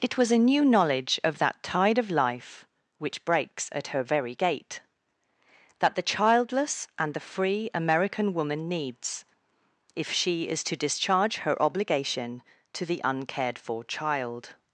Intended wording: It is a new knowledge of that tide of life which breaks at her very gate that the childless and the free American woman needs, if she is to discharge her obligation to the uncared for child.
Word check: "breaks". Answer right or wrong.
right